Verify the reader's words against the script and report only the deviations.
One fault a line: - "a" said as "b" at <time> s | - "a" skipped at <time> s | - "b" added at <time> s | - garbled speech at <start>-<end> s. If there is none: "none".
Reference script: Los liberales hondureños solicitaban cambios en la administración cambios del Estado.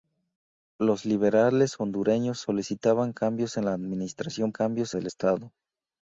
none